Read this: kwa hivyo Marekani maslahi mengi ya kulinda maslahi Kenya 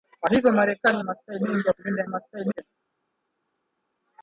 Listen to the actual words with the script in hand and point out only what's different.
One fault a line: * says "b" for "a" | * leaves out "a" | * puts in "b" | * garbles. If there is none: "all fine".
all fine